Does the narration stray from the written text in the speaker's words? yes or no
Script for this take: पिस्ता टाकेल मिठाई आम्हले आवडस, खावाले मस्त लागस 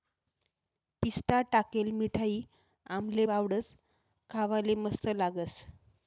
no